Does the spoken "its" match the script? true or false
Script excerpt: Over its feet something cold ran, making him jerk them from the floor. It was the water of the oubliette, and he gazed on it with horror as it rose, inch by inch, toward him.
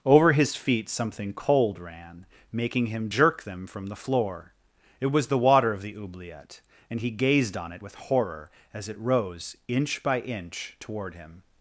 false